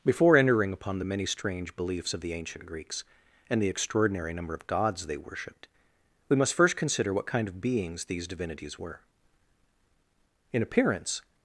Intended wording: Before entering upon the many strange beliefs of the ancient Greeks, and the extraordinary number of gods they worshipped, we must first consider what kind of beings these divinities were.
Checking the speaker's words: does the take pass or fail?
fail